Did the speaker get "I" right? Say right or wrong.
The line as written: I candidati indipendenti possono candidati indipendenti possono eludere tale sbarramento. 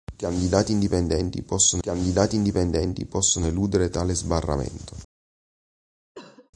right